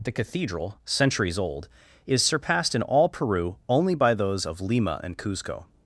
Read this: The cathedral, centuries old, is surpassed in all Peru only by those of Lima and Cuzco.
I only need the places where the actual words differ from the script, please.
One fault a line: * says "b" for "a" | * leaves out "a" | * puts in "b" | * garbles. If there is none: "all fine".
all fine